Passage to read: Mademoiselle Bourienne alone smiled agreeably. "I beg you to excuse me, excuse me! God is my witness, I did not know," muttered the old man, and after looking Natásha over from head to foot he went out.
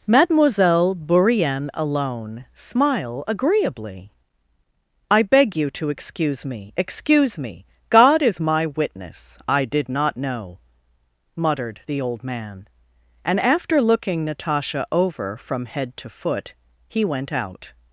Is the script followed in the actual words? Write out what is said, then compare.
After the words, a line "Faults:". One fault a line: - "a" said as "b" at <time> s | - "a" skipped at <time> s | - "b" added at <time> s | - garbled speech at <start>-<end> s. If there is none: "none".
Mademoiselle Bourienne alone smile agreeably. "I beg you to excuse me, excuse me! God is my witness, I did not know," muttered the old man, and after looking Natásha over from head to foot he went out.
Faults:
- "smiled" said as "smile" at 2.5 s